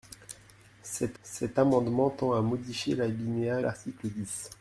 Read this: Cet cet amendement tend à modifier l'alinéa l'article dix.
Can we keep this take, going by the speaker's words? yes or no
yes